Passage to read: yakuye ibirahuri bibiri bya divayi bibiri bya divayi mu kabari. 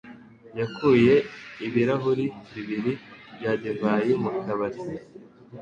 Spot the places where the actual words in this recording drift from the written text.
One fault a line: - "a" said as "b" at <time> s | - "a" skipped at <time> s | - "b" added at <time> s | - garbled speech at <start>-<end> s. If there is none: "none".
- "bibiri bya divayi" skipped at 4.1 s